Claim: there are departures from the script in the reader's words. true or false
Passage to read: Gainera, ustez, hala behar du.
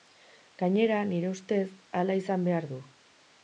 true